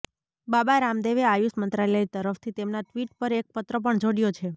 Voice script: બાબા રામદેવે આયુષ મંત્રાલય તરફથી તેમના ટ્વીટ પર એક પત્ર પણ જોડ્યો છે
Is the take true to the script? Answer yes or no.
yes